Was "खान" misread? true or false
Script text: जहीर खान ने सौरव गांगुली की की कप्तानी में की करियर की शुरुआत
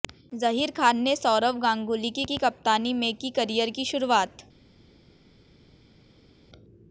false